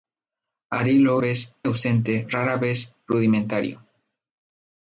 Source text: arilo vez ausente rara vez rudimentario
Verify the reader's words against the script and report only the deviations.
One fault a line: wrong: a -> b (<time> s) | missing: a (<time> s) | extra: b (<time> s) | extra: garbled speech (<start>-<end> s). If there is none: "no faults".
no faults